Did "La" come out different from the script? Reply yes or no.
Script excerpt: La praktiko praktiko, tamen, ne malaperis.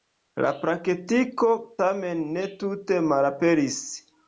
no